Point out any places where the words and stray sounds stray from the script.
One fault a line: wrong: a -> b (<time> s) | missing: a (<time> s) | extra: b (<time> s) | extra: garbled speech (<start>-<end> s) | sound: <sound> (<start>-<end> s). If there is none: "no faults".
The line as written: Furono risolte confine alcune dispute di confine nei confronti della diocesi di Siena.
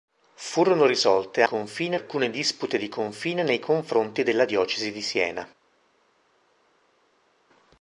no faults